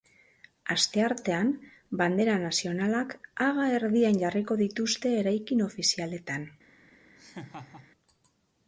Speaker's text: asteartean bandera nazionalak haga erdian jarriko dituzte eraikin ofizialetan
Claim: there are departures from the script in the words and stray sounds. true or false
true